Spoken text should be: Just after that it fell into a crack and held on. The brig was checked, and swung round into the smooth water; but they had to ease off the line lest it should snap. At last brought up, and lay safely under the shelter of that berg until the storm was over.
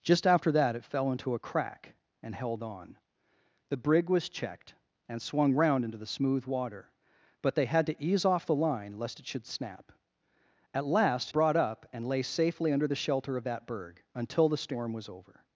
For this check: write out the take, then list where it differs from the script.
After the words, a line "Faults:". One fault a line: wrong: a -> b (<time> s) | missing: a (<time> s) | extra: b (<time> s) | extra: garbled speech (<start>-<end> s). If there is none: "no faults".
Just after that it fell into a crack and held on. The brig was checked, and swung round into the smooth water; but they had to ease off the line lest it should snap. At last brought up, and lay safely under the shelter of that berg until the storm was over.
Faults:
no faults